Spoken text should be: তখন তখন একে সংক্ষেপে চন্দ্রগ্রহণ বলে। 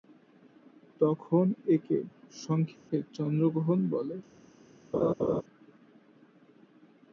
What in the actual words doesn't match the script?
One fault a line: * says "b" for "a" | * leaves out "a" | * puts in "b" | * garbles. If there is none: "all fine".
* leaves out "তখন"